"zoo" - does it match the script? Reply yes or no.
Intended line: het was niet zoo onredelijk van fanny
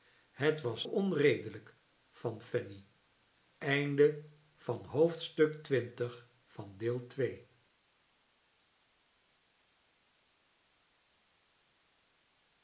no